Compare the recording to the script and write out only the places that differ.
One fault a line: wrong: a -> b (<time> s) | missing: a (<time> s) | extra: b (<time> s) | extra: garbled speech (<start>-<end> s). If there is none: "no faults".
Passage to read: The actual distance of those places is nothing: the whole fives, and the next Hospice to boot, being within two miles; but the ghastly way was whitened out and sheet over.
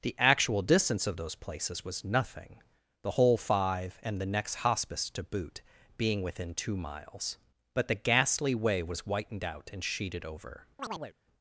wrong: is -> was (1.9 s)
wrong: fives -> five (3.4 s)
wrong: sheet -> sheeted (9.8 s)